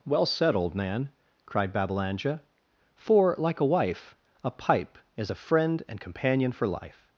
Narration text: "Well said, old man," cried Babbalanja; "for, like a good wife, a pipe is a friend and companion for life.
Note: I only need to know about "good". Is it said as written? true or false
false